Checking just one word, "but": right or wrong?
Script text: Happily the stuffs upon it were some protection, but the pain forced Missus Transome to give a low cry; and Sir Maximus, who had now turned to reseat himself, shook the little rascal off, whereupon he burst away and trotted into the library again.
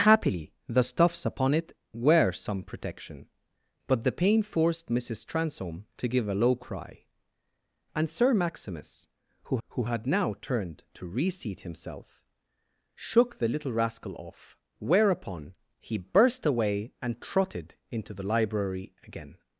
right